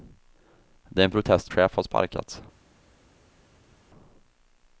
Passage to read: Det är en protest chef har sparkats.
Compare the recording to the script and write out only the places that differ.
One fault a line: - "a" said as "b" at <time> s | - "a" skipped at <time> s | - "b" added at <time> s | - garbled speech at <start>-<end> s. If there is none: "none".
none